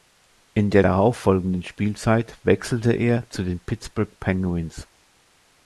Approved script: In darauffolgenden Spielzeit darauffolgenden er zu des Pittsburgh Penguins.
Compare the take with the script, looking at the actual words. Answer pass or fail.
fail